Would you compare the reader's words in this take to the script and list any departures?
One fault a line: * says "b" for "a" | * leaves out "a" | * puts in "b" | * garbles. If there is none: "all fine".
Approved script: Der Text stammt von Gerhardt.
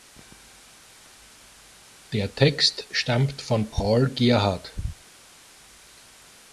* puts in "Paul"